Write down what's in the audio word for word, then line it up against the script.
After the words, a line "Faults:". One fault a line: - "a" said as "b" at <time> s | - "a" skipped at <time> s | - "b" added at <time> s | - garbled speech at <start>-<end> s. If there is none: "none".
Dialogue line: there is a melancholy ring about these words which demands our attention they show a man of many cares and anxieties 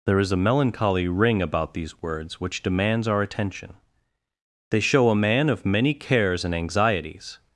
there is a melancholy ring about these words which demands our attention they show a man of many cares and anxieties
Faults:
none